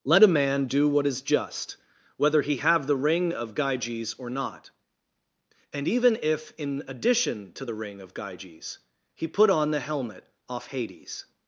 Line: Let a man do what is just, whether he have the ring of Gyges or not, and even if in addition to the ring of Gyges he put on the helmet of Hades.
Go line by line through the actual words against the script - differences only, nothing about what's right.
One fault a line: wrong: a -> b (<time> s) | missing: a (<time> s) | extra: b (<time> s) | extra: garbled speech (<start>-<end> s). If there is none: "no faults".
wrong: of -> off (10.5 s)